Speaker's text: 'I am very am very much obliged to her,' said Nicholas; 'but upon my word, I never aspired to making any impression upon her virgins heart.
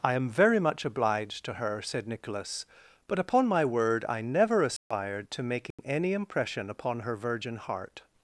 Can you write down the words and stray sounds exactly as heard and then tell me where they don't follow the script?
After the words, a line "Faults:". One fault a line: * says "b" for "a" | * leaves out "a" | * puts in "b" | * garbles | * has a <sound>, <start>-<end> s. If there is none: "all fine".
'I am very much obliged to her,' said Nicholas; 'but upon my word, I never aspired to making any impression upon her virgin heart.
Faults:
* leaves out "am very"
* has a dropout, 4.8-4.9 s
* has a dropout, 5.7-5.8 s
* says "virgin" for "virgins"